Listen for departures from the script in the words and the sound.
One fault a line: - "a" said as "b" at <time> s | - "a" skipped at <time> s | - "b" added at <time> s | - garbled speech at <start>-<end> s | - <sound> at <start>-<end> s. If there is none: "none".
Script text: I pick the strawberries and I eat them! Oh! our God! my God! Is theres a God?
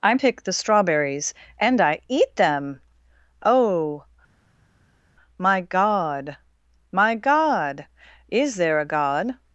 - "our" said as "my" at 5.4 s
- "theres" said as "there" at 8.6 s